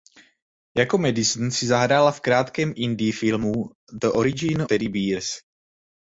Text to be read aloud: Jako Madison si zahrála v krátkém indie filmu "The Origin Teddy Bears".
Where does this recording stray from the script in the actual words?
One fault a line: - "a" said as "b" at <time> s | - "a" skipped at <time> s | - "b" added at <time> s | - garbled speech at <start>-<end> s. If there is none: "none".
none